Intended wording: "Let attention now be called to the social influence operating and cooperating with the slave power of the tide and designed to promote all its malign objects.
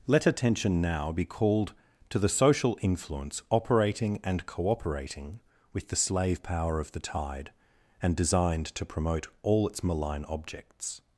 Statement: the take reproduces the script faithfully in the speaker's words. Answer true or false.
true